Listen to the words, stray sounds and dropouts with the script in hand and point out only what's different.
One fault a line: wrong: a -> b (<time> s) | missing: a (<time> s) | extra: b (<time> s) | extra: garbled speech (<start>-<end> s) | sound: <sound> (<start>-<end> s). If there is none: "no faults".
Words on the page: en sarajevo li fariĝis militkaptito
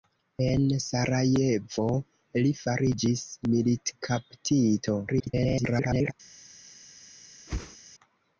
extra: garbled speech (5.1-6.1 s)
sound: whoosh (7.5-7.8 s)